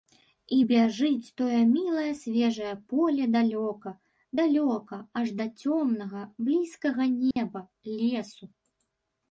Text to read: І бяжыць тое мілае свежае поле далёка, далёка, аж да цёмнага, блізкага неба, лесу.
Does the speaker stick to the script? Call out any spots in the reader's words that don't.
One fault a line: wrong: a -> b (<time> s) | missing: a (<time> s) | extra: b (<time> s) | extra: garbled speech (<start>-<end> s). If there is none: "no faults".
no faults